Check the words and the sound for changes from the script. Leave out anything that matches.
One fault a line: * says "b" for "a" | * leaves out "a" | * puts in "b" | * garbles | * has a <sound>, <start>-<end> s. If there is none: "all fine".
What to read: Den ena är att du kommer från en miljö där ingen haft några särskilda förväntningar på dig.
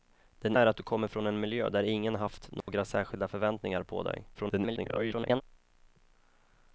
* leaves out "ena"
* has a dropout, 2.6-2.7 s
* garbles